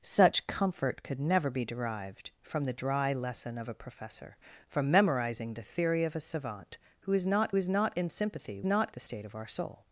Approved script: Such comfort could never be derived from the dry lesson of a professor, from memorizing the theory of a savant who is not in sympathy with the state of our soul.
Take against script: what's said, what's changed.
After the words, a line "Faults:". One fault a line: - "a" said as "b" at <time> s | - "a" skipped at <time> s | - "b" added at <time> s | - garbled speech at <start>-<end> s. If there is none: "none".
Such comfort could never be derived from the dry lesson of a professor, from memorizing the theory of a savant who is not is not in sympathy not the state of our soul.
Faults:
- "is not" added at 7.6 s
- "with" said as "not" at 8.7 s